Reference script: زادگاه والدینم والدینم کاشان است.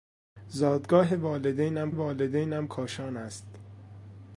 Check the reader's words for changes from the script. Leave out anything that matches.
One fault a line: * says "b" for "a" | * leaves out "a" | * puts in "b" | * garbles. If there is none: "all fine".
all fine